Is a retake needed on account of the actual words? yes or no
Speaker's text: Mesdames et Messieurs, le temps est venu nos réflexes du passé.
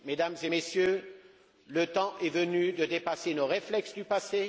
yes